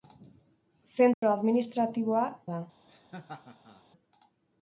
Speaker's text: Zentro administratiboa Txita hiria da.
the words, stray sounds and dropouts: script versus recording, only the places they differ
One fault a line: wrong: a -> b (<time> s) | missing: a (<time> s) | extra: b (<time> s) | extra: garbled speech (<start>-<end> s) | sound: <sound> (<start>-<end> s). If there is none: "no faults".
sound: dropout (1.1-1.2 s)
missing: Txita hiria (2.2 s)
sound: laugh (2.9-3.8 s)